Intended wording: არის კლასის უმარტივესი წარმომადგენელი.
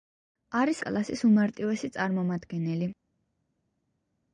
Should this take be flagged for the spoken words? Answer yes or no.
no